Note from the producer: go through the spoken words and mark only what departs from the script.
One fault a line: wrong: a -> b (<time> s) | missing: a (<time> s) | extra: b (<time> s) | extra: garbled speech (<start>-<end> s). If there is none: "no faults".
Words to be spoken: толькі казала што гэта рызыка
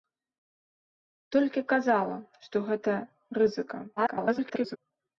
extra: garbled speech (4.0-4.8 s)